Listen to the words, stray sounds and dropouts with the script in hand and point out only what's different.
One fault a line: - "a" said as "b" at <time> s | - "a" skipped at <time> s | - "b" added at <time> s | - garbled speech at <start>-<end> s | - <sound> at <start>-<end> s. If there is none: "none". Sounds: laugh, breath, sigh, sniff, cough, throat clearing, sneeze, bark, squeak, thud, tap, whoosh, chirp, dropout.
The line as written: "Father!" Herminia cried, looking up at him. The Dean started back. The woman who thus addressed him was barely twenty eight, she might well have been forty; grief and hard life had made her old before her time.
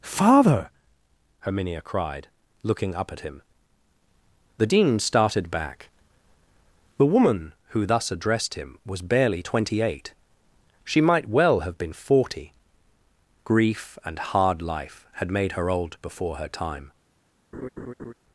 - laugh at 17.5-18.1 s